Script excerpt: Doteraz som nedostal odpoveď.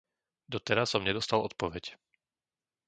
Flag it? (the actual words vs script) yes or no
no